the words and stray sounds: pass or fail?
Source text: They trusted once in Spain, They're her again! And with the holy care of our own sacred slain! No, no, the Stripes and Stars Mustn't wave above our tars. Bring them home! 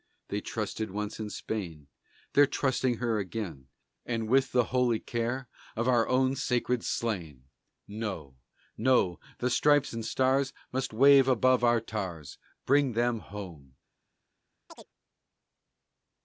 fail